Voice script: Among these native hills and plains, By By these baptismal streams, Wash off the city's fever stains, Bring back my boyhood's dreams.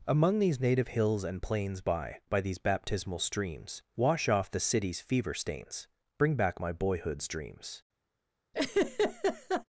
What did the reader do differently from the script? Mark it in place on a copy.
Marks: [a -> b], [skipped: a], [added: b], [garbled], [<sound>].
Among these native hills and plains, By By these baptismal streams, Wash off the city's fever stains, Bring back my boyhood's dreams. [laugh]